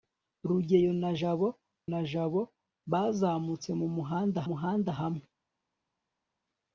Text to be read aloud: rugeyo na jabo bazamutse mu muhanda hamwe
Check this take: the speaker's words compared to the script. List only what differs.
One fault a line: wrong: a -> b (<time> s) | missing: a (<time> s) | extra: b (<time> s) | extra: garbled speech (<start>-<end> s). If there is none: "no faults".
extra: na jabo (1.9 s)
extra: muhanda (4.5 s)